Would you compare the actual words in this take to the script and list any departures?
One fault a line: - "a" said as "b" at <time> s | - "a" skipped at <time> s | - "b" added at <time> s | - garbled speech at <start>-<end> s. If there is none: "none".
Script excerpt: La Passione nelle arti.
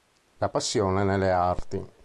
none